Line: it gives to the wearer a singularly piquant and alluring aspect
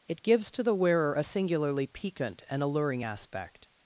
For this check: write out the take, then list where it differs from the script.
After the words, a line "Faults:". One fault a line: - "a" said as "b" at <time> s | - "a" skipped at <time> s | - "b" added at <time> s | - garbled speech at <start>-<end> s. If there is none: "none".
it gives to the wearer a singularly piquant and alluring aspect
Faults:
none